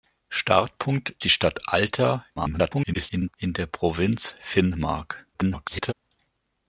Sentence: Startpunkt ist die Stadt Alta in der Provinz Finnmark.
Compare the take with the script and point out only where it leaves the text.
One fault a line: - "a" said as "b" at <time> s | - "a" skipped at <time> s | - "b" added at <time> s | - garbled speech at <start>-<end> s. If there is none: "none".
- "ist" skipped at 1.1 s
- garbled speech at 2.4-3.3 s
- garbled speech at 5.3-5.9 s